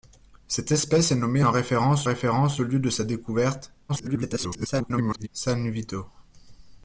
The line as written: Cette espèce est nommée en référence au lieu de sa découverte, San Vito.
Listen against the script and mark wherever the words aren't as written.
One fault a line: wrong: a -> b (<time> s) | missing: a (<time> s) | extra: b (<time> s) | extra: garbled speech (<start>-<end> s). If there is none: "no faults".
extra: référence (2.0 s)
extra: garbled speech (3.9-5.3 s)